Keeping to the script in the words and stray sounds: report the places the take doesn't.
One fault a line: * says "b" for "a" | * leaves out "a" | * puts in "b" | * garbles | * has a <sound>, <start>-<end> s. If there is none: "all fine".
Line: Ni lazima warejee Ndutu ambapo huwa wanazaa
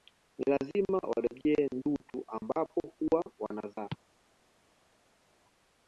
all fine